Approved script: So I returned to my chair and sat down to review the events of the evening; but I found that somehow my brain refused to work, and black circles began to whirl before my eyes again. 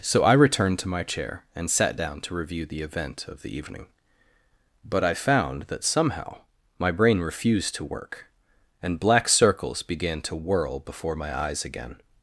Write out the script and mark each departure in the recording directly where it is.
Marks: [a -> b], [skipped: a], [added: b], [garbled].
So I returned to my chair and sat down to review the [events -> event] of the evening; but I found that somehow my brain refused to work, and black circles began to whirl before my eyes again.